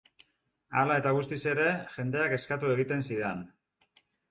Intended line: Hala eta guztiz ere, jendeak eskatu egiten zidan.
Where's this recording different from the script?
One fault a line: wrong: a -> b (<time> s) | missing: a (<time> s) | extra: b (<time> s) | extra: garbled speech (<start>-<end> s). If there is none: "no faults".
no faults